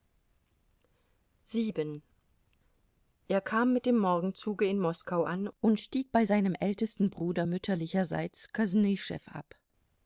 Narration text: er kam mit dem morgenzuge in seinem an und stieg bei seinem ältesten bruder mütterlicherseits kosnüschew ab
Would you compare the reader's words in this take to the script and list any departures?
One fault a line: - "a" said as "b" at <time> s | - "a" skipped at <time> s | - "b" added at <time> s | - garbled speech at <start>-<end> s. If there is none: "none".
- "seinem" said as "moskau" at 4.8 s